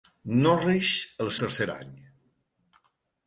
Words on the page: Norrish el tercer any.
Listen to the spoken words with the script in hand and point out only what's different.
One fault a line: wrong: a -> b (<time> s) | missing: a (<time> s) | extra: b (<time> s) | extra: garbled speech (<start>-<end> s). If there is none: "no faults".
no faults